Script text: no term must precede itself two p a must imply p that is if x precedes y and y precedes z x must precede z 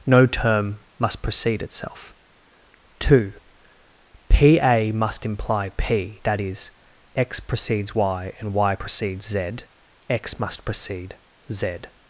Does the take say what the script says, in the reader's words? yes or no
no